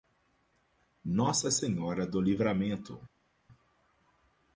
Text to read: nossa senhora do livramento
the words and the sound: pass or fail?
pass